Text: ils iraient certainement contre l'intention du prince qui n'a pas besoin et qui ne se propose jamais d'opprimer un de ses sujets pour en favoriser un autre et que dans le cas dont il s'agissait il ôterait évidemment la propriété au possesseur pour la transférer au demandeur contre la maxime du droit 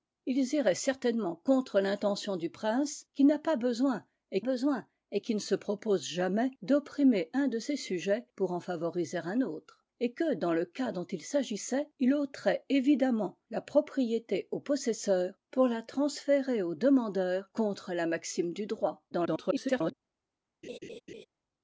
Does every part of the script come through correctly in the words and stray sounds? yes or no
no